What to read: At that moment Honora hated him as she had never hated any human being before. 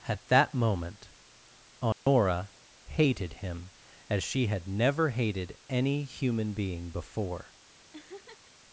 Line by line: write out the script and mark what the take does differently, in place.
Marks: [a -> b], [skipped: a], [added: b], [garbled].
At that moment Honora hated him as she had never hated any human being before.